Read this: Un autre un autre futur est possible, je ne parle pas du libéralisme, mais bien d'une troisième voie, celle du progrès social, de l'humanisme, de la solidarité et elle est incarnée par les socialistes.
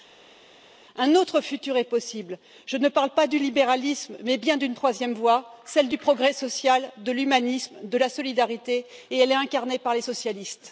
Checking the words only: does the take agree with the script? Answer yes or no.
no